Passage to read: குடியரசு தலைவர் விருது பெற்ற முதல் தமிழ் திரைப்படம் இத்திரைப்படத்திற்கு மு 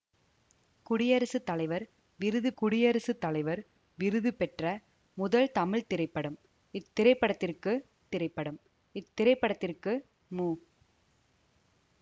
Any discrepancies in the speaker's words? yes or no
yes